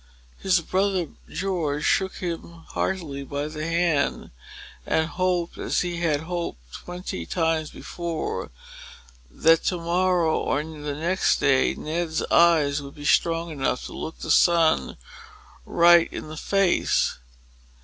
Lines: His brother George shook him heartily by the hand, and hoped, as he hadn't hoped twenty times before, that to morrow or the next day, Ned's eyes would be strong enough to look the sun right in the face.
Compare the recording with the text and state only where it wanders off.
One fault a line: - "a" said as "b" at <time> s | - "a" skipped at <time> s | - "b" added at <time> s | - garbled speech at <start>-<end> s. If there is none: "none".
- "hadn't" said as "had" at 6.0 s